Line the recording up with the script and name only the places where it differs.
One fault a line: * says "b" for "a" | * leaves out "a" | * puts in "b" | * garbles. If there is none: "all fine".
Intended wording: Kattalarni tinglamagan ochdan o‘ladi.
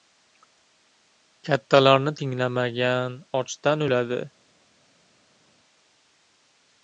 all fine